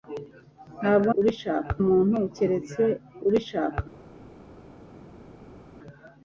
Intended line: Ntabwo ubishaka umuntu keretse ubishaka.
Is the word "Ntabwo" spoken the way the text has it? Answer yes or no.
yes